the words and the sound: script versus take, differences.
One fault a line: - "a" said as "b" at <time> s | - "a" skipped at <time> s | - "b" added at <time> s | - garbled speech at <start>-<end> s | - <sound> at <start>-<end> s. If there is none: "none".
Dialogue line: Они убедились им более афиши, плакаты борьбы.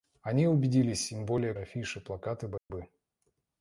- dropout at 2.6-2.7 s